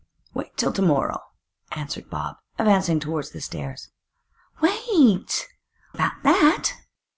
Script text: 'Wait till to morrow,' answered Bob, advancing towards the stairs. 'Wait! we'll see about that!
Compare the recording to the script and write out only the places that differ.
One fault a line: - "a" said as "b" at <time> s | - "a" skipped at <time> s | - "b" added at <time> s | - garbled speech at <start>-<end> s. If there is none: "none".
- "we'll see" skipped at 5.5 s